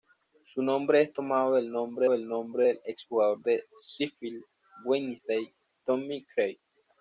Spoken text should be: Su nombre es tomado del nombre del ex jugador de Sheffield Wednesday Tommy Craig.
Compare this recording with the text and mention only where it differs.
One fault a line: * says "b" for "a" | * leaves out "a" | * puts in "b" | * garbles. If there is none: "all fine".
* puts in "nombre del"